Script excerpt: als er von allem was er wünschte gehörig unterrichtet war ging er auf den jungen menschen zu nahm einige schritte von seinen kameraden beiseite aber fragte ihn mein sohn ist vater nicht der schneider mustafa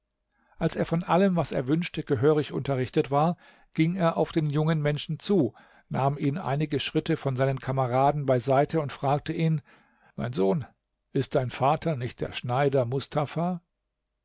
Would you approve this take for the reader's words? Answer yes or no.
no